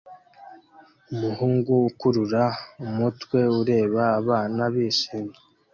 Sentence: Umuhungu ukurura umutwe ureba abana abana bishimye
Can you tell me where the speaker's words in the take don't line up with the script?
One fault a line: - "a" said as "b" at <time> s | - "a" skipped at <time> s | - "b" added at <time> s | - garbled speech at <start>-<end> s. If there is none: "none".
- "abana" skipped at 4.6 s